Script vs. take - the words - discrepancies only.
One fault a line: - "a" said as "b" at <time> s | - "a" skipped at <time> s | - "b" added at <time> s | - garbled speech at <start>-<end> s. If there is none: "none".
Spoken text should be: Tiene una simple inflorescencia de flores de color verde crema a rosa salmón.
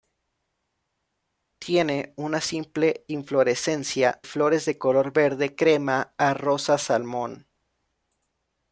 - "de" skipped at 4.2 s